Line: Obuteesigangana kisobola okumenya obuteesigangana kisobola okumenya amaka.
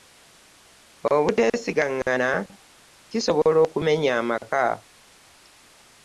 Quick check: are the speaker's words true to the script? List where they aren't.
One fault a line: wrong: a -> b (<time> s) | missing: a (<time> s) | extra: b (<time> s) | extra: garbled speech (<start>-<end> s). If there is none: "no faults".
missing: obuteesigangana kisobola okumenya (4.1 s)